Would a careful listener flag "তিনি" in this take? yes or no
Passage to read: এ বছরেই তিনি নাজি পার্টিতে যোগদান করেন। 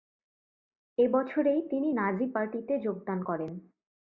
no